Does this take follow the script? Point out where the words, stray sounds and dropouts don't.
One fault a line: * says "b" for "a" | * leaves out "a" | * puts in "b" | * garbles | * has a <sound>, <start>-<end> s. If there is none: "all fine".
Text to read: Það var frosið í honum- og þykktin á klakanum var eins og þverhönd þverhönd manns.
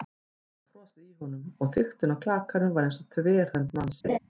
* leaves out "þverhönd"
* has a laugh, 4.0-4.2 s